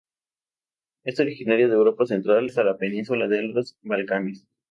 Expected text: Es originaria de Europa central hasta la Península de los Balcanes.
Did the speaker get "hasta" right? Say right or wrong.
right